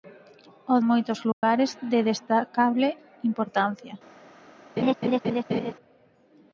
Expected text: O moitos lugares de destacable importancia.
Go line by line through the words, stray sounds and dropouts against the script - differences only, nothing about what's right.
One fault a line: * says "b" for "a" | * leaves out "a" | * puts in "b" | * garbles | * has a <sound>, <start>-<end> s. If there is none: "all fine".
* has a dropout, 1.3-1.4 s
* has a laugh, 4.8-5.7 s